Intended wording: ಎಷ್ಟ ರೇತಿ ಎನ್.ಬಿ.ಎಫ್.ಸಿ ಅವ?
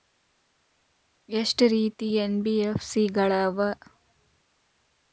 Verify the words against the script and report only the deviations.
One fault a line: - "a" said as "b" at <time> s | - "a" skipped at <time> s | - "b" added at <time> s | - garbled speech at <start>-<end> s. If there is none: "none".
- "ಗಳ" added at 3.2 s